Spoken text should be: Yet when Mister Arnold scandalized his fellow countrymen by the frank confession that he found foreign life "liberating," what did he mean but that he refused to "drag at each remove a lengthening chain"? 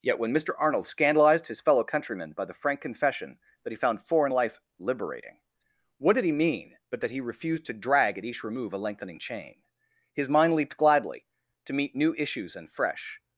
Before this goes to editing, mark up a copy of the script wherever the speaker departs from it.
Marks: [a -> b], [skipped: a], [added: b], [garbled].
Yet when Mister Arnold scandalized his fellow countrymen by the frank confession that he found foreign life "liberating," what did he mean but that he refused to "drag at each remove a lengthening chain"? [added: His mind leaped gladly to meet new issues and fresh]